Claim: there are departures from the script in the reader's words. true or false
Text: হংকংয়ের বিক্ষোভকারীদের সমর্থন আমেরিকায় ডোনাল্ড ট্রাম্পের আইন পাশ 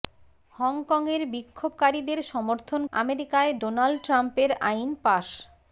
false